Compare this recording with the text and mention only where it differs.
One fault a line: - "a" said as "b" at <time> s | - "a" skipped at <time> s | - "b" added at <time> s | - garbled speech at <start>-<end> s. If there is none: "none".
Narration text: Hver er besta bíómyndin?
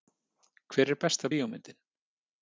none